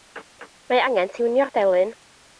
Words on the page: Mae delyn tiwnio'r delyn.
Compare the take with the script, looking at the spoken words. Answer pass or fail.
fail